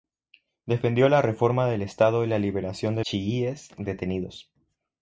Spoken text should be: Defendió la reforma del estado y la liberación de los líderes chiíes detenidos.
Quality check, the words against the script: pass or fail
fail